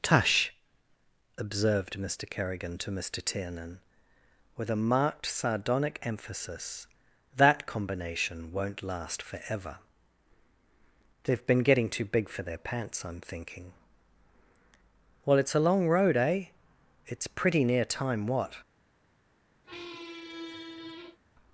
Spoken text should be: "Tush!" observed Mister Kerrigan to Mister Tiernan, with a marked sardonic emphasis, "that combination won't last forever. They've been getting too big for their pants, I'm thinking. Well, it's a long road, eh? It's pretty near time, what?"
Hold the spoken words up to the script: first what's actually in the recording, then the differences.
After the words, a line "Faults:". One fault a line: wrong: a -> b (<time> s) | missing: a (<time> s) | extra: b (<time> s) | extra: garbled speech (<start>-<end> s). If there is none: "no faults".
"Tush!" observed Mister Kerrigan to Mister Tiernan, with a marked sardonic emphasis, "that combination won't last forever. They've been getting too big for their pants, I'm thinking. Well, it's a long road, eh? It's pretty near time, what?"
Faults:
no faults